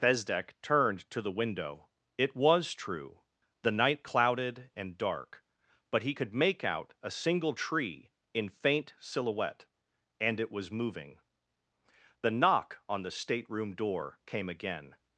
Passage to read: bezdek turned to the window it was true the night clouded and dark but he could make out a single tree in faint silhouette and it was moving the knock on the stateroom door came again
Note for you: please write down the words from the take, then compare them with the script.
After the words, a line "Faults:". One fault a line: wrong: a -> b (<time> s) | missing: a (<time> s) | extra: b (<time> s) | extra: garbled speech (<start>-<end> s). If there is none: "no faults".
bezdek turned to the window it was true the night clouded and dark but he could make out a single tree in faint silhouette and it was moving the knock on the stateroom door came again
Faults:
no faults